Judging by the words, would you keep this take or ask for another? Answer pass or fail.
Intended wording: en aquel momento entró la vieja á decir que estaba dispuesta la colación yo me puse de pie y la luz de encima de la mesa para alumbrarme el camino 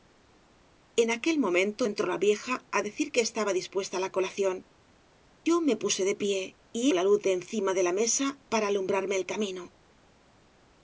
pass